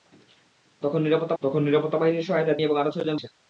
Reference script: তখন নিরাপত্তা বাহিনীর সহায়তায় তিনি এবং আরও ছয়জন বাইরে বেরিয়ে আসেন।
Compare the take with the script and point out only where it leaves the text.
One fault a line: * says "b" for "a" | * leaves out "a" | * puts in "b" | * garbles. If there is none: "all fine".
* puts in "তখন নিরাপত্তা"
* leaves out "তিনি"
* leaves out "বাইরে বেরিয়ে"